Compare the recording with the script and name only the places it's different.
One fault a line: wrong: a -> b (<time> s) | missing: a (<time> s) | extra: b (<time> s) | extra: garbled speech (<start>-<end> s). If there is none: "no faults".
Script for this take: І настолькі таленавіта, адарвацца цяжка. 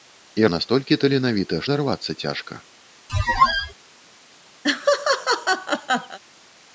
no faults